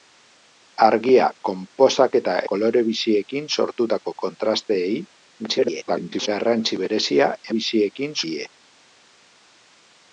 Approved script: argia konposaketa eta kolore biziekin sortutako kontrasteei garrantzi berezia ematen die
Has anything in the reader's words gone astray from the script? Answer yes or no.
yes